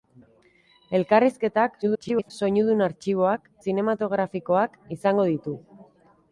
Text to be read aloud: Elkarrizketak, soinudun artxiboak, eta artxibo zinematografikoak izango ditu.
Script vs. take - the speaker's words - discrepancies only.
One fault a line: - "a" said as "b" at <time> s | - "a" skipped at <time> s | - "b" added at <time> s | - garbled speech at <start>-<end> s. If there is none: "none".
- garbled speech at 1.8-2.3 s
- "eta artxibo" skipped at 3.5 s